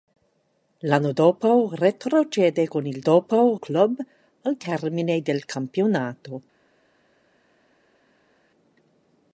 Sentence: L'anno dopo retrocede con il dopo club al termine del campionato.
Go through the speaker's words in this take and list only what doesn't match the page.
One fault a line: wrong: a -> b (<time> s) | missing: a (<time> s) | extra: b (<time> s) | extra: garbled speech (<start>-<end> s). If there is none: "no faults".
no faults